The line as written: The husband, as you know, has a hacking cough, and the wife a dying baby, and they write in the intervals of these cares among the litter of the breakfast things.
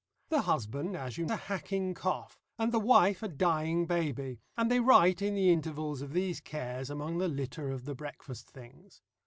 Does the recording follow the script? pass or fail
fail